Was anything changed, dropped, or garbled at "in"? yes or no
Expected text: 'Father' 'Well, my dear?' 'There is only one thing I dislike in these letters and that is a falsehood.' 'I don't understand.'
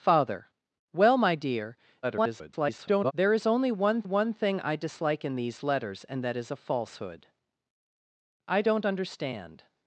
no